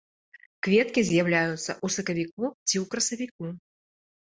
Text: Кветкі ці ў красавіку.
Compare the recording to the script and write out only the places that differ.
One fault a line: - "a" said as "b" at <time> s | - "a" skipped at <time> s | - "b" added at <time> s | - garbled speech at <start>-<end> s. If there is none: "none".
- "з'яўляюцца ў сакавіку" added at 1.1 s